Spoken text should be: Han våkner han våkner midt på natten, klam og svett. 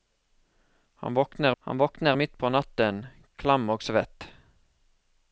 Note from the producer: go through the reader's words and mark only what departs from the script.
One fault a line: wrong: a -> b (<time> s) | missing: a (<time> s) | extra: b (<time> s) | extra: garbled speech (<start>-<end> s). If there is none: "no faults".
no faults